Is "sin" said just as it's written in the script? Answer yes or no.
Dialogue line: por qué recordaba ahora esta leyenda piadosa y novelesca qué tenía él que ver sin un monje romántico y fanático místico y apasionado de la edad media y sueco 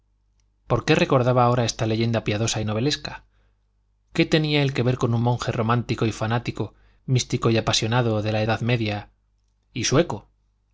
no